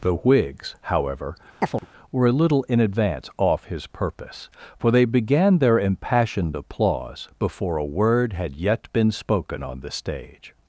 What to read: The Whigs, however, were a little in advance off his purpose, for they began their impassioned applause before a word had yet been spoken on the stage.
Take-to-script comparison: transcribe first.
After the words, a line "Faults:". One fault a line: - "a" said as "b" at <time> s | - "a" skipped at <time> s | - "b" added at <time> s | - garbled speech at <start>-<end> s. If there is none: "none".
The Whigs, however, were a little in advance off his purpose, for they began their impassioned applause before a word had yet been spoken on the stage.
Faults:
none